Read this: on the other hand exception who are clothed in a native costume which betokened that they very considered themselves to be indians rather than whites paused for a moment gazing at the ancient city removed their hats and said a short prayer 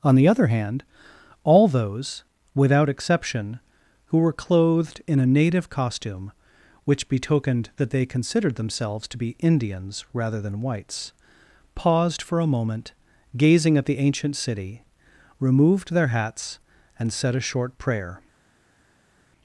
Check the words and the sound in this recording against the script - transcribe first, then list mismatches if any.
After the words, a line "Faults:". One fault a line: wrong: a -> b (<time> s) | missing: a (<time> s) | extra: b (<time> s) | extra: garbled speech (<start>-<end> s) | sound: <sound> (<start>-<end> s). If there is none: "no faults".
on the other hand all those without exception who were clothed in a native costume which betokened that they considered themselves to be indians rather than whites paused for a moment gazing at the ancient city removed their hats and said a short prayer
Faults:
extra: all those without (1.4 s)
wrong: are -> were (4.2 s)
missing: very (8.1 s)